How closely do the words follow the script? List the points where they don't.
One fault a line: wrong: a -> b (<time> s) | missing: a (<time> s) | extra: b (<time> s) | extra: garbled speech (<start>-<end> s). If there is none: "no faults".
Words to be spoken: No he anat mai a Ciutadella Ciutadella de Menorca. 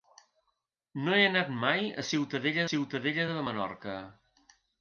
no faults